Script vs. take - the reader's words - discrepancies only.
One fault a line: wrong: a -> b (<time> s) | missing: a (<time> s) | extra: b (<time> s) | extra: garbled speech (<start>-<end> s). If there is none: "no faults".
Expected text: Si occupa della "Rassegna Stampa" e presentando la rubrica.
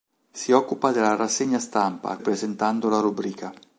no faults